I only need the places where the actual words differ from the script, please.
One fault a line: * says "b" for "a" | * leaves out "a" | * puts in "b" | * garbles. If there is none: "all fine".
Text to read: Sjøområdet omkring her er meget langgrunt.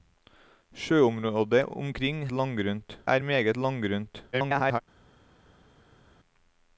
* says "langgrunt" for "her"
* garbles